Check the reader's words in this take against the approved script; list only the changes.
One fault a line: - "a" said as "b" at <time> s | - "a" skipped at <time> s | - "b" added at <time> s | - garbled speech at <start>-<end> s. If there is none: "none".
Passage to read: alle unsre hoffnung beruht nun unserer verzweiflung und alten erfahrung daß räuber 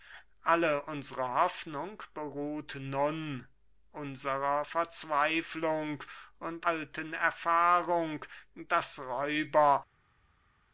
none